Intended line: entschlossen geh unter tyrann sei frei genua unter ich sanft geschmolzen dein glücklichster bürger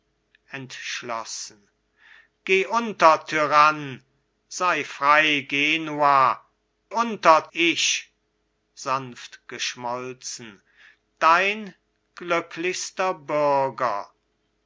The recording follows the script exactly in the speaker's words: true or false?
true